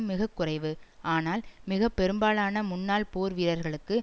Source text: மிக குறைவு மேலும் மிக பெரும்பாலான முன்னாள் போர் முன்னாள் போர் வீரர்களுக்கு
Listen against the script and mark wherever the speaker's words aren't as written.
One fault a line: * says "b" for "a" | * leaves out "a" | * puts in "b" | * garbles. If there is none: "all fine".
* says "ஆனால்" for "மேலும்"
* leaves out "முன்னாள் போர்"